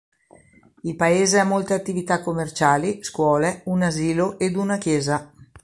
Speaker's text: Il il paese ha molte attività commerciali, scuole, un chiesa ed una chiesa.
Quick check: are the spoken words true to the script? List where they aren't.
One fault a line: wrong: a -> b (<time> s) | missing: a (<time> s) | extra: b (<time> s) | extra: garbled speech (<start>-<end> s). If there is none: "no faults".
missing: il (0.9 s)
wrong: chiesa -> asilo (3.8 s)